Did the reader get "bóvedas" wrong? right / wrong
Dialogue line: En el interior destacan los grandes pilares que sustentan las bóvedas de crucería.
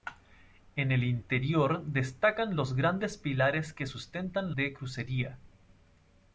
wrong